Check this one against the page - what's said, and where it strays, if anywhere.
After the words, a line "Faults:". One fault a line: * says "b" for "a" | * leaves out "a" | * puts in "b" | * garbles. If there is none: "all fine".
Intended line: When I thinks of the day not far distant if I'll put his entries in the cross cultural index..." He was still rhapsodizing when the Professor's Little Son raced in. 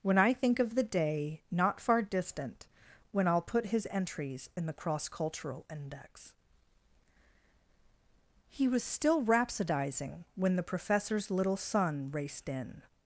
When I think of the day not far distant when I'll put his entries in the cross cultural index..." He was still rhapsodizing when the Professor's Little Son raced in.
Faults:
* says "think" for "thinks"
* says "when" for "if"